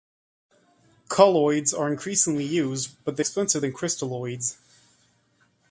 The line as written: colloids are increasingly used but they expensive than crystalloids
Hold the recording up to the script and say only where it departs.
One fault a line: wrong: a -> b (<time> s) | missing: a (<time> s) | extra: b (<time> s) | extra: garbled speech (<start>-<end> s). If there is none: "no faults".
no faults